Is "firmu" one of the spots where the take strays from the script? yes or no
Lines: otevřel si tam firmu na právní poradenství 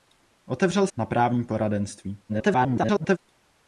yes